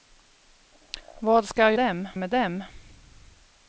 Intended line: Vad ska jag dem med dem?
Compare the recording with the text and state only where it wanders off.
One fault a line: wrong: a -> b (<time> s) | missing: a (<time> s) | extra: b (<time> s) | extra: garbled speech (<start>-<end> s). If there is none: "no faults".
no faults